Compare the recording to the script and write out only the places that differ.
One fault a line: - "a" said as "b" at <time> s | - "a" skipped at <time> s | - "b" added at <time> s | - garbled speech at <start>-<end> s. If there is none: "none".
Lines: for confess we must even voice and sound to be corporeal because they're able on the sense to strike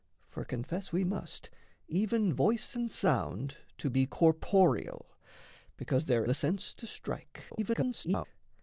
- "able on" skipped at 6.2 s
- garbled speech at 7.5-8.3 s